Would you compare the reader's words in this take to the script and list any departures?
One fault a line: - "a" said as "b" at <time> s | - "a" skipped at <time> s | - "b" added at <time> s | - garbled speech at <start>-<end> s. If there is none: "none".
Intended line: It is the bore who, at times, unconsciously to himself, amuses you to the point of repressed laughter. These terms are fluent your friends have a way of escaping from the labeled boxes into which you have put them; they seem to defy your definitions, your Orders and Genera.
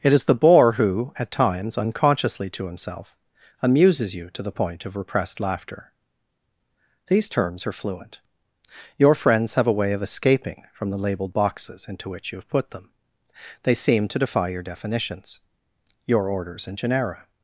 none